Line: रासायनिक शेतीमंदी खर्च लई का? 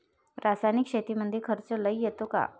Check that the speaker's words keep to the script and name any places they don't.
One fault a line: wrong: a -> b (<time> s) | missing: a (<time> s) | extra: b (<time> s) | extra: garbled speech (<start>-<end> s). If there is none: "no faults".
extra: येतो (2.0 s)